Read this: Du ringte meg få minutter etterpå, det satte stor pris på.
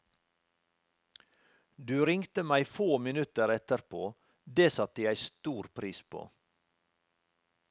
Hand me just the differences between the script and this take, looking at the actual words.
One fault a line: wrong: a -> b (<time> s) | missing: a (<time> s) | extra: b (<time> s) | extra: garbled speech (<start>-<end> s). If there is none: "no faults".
extra: jeg (5.0 s)